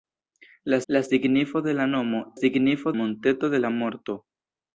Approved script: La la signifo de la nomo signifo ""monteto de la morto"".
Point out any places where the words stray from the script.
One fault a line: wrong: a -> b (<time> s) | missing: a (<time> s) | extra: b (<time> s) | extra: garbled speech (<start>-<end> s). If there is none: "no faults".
no faults